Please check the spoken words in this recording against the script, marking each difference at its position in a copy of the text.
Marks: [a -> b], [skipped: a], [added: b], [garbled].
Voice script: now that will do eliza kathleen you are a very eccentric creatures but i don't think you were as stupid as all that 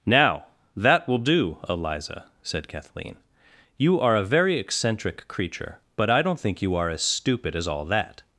now that will do eliza [added: said] kathleen you are a very eccentric [creatures -> creature] but i don't think you [were -> are] as stupid as all that